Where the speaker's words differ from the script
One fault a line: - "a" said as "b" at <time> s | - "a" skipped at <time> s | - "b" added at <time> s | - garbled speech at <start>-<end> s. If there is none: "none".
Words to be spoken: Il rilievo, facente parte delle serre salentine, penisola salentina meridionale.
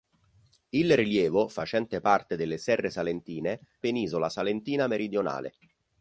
none